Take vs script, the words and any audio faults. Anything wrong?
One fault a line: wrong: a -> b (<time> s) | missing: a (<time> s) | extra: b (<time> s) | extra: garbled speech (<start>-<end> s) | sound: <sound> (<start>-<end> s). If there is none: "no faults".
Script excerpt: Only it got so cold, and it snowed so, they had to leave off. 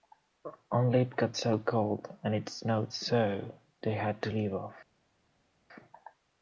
no faults